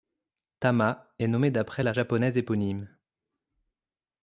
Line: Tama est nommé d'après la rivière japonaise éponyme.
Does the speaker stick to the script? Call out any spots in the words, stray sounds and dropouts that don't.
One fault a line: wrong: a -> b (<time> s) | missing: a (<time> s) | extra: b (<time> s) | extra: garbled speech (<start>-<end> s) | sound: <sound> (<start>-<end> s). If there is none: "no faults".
missing: rivière (1.9 s)